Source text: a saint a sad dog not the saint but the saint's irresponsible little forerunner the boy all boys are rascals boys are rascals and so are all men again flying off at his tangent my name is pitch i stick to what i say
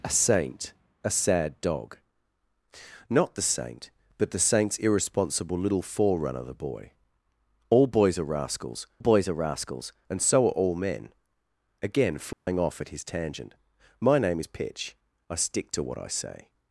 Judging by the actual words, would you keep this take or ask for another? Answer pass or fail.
pass